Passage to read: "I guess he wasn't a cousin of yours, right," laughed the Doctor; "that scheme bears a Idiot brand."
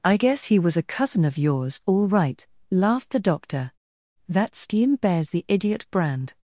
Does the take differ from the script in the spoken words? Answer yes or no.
yes